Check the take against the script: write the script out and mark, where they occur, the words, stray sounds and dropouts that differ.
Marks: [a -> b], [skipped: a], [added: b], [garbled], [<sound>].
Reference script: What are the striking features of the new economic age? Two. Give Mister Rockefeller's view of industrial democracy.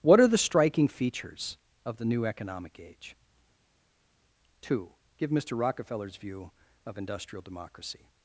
What are the striking features of the new economic age? Two. Give Mister Rockefeller's view of industrial democracy.